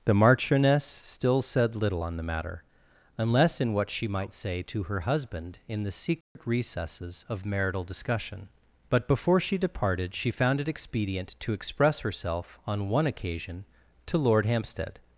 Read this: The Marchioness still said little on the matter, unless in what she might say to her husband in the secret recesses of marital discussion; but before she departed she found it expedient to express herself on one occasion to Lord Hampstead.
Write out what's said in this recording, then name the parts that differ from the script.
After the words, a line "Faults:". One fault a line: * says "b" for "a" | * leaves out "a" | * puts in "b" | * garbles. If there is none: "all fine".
The Marchioness still said little on the matter, unless in what she might say to her husband in the secret recesses of marital discussion; but before she departed she found it expedient to express herself on one occasion to Lord Hampstead.
Faults:
all fine